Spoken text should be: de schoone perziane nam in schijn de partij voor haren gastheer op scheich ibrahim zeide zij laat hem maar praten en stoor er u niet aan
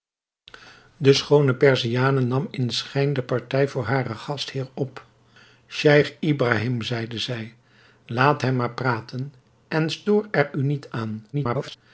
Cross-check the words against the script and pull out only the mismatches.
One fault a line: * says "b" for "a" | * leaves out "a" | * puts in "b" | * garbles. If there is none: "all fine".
* garbles